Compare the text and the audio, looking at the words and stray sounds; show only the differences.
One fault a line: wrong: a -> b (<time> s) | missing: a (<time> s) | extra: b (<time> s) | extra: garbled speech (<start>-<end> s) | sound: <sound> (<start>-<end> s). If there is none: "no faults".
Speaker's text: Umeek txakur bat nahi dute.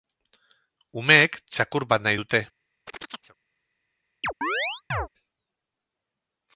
sound: chirp (2.9-3.4 s)
sound: chirp (4.2-5.1 s)